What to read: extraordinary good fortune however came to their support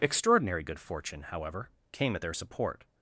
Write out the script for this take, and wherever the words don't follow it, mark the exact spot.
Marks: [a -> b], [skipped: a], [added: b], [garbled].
extraordinary good fortune however came [to -> at] their support